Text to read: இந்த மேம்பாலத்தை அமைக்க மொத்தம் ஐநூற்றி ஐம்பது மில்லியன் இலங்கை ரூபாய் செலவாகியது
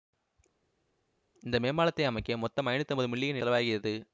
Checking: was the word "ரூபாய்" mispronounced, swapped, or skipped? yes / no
yes